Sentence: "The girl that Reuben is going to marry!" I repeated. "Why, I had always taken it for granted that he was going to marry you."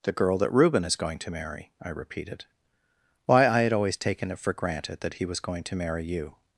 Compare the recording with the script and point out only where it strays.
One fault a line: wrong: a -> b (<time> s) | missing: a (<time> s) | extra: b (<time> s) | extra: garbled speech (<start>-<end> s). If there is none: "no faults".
no faults